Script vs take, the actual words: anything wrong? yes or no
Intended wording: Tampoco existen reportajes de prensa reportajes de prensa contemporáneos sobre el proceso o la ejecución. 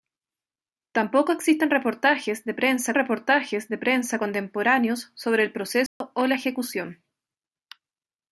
no